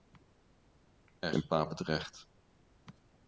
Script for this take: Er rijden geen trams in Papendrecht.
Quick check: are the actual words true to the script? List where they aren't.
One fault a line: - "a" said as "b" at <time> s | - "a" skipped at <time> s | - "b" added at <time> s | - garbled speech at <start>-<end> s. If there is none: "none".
- "rijden geen trams" skipped at 1.3 s